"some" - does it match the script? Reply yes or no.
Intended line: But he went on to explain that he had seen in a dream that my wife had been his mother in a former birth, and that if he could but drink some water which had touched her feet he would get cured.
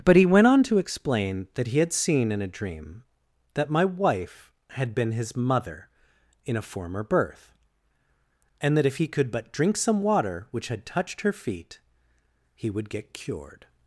yes